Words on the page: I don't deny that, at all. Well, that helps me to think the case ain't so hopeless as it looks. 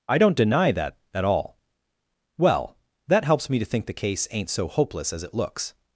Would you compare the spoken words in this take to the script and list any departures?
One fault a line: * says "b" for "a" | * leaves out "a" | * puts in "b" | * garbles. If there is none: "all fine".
all fine